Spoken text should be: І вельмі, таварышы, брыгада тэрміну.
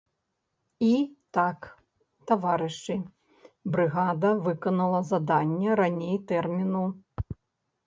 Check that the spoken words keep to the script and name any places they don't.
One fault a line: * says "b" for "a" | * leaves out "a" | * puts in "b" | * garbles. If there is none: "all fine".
* says "так" for "вельмі"
* puts in "выканала заданне раней"